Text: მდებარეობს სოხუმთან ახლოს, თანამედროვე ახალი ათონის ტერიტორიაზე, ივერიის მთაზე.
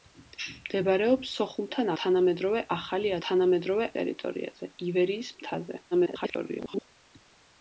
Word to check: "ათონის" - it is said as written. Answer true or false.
false